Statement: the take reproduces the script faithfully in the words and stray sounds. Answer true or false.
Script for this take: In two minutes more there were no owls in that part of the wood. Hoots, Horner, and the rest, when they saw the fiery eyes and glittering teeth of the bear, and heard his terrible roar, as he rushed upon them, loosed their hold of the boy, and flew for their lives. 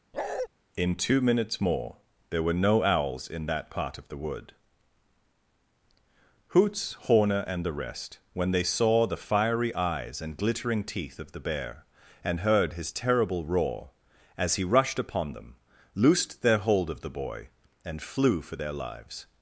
false